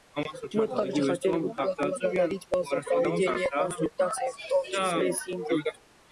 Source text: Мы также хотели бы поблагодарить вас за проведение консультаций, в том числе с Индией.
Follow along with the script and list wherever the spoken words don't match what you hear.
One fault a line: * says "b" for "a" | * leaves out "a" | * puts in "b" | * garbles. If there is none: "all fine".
all fine